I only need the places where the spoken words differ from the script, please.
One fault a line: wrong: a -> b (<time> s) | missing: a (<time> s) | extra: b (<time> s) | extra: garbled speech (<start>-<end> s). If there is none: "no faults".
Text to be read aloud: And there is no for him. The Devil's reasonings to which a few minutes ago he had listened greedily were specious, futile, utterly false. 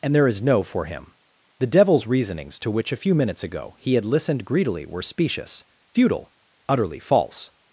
no faults